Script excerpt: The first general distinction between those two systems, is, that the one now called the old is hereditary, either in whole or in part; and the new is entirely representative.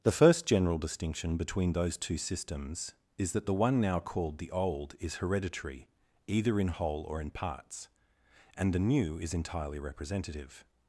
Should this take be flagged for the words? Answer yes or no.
yes